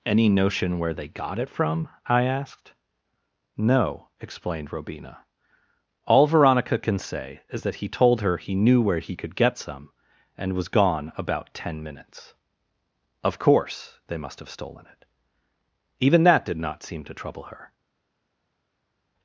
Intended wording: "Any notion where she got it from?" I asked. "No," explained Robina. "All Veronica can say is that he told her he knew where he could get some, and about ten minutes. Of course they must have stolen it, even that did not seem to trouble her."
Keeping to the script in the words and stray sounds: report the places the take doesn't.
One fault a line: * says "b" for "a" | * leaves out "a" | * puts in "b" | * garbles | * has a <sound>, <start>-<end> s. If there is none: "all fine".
* says "they" for "she"
* puts in "was gone"